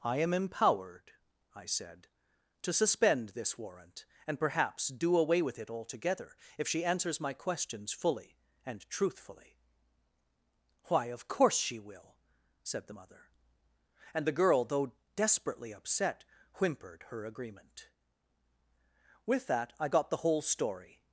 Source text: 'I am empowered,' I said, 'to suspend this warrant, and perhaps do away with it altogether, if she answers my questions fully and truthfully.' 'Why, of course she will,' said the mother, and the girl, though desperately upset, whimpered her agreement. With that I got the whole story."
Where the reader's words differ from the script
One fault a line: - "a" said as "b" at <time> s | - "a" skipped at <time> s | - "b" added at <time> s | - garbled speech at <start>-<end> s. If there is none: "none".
none